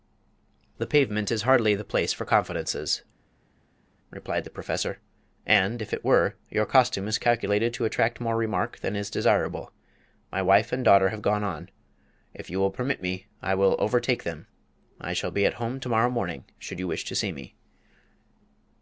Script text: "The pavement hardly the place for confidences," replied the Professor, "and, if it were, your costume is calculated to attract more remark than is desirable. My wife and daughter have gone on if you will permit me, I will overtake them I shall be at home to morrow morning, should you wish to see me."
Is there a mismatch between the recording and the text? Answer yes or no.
yes